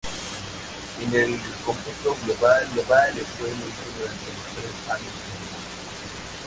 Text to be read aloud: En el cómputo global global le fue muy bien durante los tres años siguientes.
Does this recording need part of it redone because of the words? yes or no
no